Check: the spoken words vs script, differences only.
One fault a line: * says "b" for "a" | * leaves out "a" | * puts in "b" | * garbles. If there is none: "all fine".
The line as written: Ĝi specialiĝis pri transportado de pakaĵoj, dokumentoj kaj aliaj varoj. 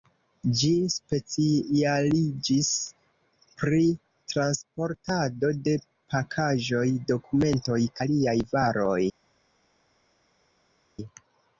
* leaves out "kaj"